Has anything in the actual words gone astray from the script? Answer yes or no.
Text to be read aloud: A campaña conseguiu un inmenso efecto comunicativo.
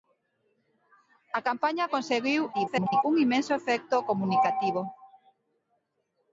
yes